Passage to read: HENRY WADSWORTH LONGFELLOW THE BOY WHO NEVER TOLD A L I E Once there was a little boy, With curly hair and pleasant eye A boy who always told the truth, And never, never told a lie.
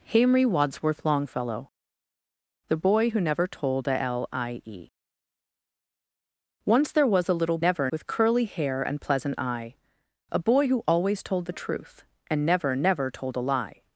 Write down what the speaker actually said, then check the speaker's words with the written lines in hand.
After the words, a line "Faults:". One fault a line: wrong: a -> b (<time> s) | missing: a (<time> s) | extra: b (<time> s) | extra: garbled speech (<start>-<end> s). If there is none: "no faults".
HENRY WADSWORTH LONGFELLOW THE BOY WHO NEVER TOLD A L I E Once there was a little never, With curly hair and pleasant eye A boy who always told the truth, And never, never told a lie.
Faults:
wrong: boy -> never (7.6 s)